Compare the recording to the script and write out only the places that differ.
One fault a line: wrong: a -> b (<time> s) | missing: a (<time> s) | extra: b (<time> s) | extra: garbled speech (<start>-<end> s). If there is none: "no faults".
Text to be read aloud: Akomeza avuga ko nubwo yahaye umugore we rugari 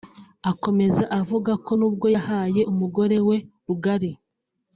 no faults